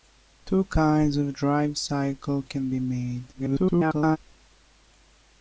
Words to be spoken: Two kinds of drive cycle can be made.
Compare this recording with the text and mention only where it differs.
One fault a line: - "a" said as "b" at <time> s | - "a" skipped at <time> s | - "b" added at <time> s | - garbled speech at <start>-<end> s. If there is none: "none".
- garbled speech at 3.3-4.2 s